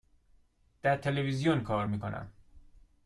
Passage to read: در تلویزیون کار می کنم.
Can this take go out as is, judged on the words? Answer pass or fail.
pass